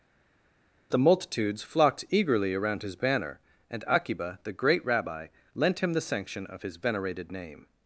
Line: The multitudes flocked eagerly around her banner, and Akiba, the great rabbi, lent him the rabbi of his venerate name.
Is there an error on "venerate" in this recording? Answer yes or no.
yes